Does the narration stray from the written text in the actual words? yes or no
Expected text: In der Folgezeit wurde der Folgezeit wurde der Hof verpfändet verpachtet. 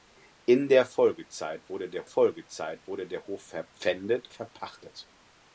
no